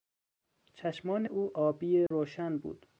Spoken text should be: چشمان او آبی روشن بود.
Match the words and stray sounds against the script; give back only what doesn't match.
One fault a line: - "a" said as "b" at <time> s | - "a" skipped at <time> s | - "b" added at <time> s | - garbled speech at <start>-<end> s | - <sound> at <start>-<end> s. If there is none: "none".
- dropout at 2.1-2.1 s